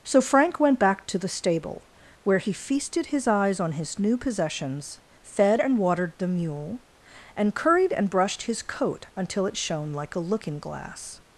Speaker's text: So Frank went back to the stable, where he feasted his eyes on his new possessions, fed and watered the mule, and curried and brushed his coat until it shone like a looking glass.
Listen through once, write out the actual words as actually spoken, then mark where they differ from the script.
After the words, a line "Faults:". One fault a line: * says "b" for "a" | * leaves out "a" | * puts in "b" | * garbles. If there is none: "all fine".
So Frank went back to the stable, where he feasted his eyes on his new possessions, fed and watered the mule, and curried and brushed his coat until it shone like a looking glass.
Faults:
all fine